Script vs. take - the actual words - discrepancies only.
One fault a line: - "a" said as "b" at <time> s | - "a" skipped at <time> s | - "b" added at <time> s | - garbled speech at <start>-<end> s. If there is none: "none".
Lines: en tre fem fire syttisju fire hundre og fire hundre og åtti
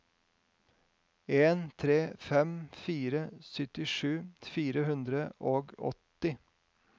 - "fire hundre og" skipped at 5.8 s